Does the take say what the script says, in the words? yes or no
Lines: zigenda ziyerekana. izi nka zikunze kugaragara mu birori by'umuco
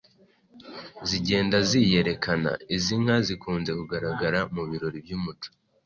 yes